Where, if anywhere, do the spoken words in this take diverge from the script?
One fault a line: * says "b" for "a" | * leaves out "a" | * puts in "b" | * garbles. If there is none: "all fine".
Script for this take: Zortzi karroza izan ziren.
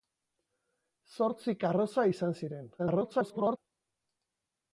* garbles